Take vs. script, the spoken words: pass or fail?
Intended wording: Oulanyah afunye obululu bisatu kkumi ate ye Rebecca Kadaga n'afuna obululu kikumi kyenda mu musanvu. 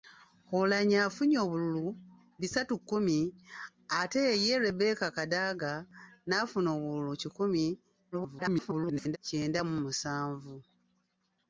fail